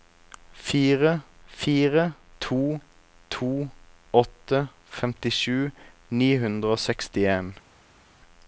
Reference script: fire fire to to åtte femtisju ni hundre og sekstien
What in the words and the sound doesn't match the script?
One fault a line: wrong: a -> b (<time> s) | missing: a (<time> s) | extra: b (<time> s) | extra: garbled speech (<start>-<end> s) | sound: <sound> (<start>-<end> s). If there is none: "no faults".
no faults